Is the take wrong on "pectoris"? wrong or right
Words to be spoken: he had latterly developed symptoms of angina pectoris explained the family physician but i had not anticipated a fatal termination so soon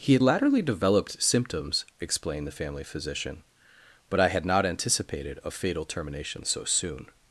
wrong